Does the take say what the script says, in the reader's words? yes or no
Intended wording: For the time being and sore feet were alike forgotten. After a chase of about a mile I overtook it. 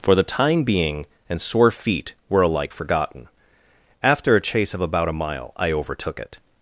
yes